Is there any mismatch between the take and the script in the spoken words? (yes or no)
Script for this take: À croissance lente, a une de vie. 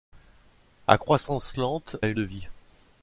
no